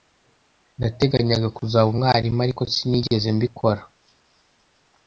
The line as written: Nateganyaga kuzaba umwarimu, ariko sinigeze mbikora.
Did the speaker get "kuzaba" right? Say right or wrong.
right